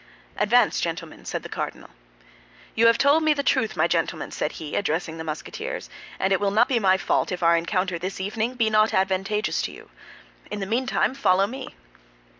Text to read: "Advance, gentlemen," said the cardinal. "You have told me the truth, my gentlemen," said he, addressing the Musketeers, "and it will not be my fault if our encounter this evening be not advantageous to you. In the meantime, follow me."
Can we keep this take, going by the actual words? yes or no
yes